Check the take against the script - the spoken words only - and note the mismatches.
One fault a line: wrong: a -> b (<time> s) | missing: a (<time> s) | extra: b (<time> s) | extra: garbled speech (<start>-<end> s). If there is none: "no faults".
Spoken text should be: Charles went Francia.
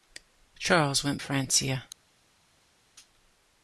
no faults